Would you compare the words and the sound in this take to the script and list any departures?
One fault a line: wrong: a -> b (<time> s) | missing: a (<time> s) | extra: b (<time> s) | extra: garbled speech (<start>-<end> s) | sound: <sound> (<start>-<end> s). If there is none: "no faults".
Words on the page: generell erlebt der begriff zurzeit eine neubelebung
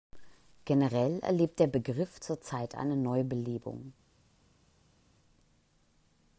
no faults